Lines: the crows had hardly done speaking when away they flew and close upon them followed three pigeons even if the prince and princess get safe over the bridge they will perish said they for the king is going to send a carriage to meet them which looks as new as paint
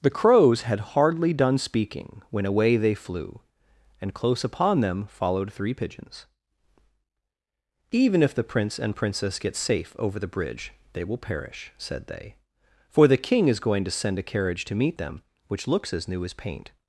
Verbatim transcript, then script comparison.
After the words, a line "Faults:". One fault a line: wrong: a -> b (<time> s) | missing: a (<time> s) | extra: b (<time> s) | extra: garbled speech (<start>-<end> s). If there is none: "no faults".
the crows had hardly done speaking when away they flew and close upon them followed three pigeons even if the prince and princess get safe over the bridge they will perish said they for the king is going to send a carriage to meet them which looks as new as paint
Faults:
no faults